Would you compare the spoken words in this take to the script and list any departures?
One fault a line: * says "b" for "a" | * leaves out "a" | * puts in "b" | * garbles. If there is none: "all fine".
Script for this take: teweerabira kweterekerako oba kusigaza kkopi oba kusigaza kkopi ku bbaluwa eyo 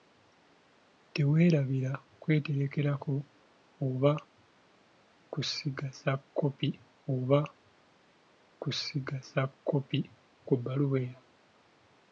all fine